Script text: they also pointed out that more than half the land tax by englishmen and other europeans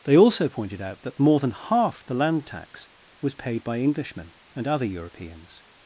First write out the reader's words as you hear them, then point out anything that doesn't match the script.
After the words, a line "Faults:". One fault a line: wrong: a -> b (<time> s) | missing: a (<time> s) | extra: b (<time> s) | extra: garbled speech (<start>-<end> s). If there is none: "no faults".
they also pointed out that more than half the land tax was paid by englishmen and other europeans
Faults:
extra: was paid (3.2 s)